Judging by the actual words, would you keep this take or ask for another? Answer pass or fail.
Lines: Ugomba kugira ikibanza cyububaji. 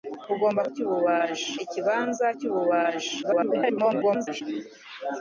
fail